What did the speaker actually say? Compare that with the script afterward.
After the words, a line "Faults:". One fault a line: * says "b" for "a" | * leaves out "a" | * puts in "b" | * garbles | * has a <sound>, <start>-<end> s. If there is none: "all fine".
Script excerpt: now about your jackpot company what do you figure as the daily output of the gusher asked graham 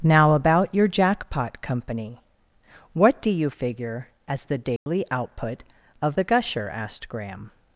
now about your jackpot company what do you figure as the daily output of the gusher asked graham
Faults:
* has a dropout, 4.8-4.9 s